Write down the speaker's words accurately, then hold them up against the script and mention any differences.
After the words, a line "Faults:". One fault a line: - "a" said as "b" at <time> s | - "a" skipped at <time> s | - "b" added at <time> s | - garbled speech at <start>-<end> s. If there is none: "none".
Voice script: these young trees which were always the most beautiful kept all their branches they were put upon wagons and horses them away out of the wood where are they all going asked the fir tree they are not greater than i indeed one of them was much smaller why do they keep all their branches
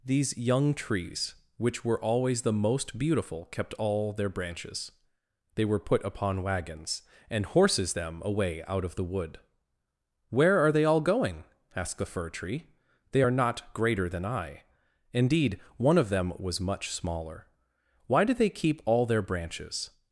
these young trees which were always the most beautiful kept all their branches they were put upon wagons and horses them away out of the wood where are they all going asked the fir tree they are not greater than i indeed one of them was much smaller why do they keep all their branches
Faults:
none